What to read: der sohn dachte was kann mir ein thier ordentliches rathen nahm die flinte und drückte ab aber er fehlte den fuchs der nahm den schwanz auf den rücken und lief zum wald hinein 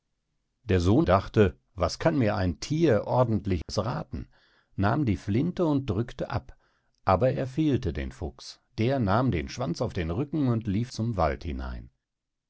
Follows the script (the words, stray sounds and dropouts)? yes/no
no